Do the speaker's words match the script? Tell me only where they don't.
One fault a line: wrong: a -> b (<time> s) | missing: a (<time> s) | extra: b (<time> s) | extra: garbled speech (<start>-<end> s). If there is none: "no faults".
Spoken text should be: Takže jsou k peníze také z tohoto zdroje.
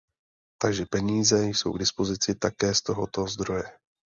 extra: peníze (0.8 s)
wrong: peníze -> dispozici (1.8 s)